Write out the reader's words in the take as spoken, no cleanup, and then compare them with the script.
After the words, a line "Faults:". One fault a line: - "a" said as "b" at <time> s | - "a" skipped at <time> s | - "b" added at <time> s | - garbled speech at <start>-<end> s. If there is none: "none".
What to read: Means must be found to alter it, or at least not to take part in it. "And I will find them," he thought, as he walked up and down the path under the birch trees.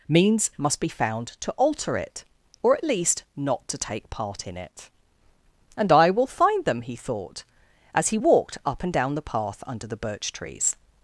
Means must be found to alter it, or at least not to take part in it. "And I will find them," he thought, as he walked up and down the path under the birch trees.
Faults:
none